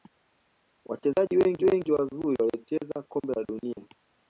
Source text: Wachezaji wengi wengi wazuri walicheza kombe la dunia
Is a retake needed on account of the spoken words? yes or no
no